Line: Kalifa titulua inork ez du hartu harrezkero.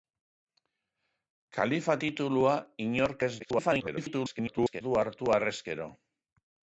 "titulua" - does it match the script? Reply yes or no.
yes